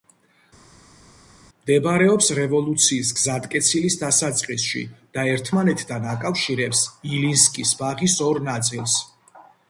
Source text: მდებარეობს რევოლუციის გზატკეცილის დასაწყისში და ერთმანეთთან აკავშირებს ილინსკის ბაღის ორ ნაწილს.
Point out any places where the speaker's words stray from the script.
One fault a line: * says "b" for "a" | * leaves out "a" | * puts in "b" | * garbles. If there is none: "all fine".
all fine